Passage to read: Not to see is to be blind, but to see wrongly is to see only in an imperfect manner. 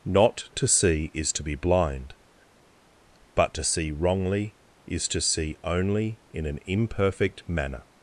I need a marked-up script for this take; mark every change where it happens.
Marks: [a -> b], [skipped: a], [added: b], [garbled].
Not to see is to be blind, but to see wrongly is to see only in an imperfect manner.